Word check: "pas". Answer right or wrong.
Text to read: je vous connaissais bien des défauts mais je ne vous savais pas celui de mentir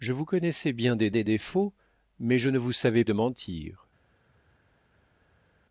wrong